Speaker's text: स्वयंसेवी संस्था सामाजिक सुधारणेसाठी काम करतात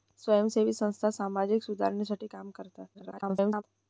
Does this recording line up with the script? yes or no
no